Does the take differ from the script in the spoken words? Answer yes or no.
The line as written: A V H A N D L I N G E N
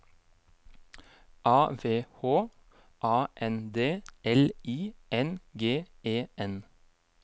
no